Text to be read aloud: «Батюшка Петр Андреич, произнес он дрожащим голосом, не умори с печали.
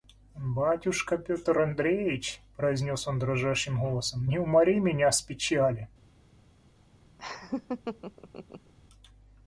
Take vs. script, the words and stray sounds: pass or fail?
fail